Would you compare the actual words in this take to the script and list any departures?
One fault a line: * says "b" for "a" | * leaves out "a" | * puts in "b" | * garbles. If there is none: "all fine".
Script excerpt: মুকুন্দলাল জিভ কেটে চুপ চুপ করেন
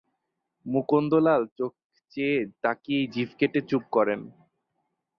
* puts in "চোখ চেয়ে তাকিয়েই"
* leaves out "চুপ"